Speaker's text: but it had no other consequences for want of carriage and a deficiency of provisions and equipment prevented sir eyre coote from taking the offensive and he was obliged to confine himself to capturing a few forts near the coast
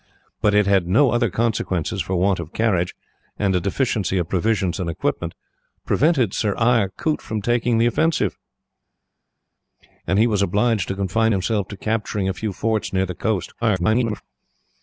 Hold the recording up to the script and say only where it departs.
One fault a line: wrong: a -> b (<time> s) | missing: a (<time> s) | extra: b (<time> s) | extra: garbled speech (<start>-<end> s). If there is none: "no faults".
extra: garbled speech (13.6-14.2 s)